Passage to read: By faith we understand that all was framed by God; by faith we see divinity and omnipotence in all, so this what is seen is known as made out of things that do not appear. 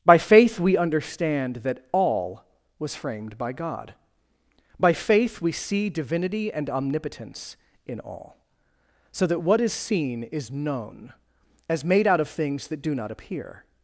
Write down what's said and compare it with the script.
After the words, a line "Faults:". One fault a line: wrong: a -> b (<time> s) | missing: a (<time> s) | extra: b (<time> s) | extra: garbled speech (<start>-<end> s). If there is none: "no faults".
By faith we understand that all was framed by God; by faith we see divinity and omnipotence in all, so that what is seen is known as made out of things that do not appear.
Faults:
wrong: this -> that (9.3 s)